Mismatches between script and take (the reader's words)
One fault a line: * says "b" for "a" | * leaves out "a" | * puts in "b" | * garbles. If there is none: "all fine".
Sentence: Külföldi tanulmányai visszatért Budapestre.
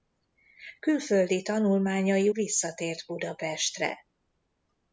all fine